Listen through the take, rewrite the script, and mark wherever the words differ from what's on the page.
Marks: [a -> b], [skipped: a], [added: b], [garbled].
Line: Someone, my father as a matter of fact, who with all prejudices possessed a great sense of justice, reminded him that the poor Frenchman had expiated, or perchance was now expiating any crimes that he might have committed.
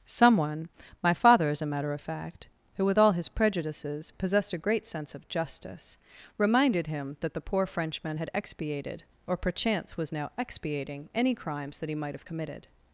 Someone, my father as a matter of fact, who with all [added: his] prejudices possessed a great sense of justice, reminded him that the poor Frenchman had expiated, or perchance was now expiating any crimes that he might have committed.